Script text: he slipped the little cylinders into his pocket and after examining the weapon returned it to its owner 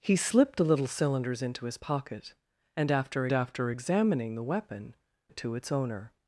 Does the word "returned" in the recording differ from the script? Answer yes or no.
yes